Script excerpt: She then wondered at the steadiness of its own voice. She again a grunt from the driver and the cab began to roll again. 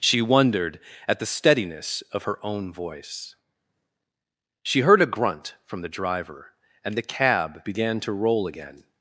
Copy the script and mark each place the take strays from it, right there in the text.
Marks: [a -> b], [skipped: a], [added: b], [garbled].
She [skipped: then] wondered at the steadiness of [its -> her] own voice. She [again -> heard] a grunt from the driver and the cab began to roll again.